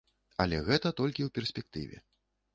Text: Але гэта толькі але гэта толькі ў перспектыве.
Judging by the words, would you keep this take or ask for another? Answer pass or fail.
fail